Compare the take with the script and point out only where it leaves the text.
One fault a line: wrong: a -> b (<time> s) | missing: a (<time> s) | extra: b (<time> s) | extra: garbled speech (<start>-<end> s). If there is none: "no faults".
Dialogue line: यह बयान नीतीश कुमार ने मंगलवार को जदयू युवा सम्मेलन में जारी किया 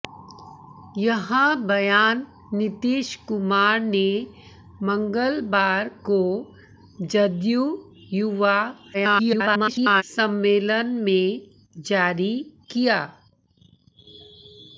extra: garbled speech (8.9-10.0 s)